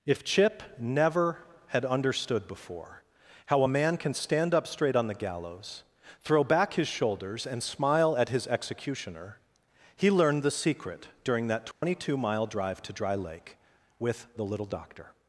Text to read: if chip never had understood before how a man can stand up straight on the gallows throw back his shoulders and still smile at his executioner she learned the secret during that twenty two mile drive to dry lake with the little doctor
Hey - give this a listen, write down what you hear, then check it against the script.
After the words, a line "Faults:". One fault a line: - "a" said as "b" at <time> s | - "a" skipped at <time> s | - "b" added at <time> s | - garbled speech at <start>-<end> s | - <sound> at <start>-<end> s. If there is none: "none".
if chip never had understood before how a man can stand up straight on the gallows throw back his shoulders and smile at his executioner he learned the secret during that twenty two mile drive to dry lake with the little doctor
Faults:
- "still" skipped at 7.6 s
- "she" said as "he" at 10.0 s
- dropout at 11.7-11.8 s